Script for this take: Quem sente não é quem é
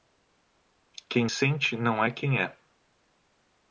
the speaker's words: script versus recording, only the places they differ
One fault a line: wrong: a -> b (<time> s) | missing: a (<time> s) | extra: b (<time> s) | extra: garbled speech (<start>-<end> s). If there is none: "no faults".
no faults